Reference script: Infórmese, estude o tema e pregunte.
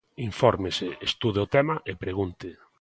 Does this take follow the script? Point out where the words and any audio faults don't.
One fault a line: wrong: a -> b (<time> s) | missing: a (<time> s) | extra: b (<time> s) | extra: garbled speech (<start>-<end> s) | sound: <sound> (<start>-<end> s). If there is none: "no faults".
no faults